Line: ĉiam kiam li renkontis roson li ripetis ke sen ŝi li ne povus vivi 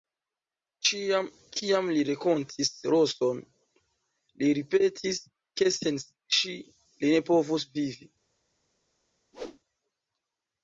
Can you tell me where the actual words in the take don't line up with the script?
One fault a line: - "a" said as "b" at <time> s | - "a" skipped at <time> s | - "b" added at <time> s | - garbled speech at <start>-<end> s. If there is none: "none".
none